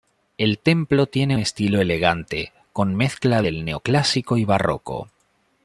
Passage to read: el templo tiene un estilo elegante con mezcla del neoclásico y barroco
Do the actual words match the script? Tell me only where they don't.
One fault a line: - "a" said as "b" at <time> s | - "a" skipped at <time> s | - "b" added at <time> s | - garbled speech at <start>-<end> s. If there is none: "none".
- "un" skipped at 1.4 s